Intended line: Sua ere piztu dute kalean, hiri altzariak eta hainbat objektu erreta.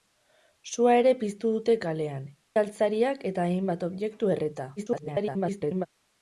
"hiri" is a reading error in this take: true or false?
true